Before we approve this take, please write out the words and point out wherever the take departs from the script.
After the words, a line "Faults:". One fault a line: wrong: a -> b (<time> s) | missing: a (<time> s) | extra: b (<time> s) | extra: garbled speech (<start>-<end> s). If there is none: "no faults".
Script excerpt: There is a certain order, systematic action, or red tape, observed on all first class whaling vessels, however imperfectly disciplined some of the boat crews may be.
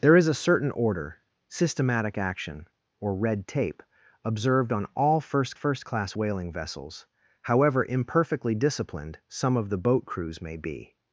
There is a certain order, systematic action, or red tape, observed on all first first class whaling vessels, however imperfectly disciplined some of the boat crews may be.
Faults:
extra: first (5.5 s)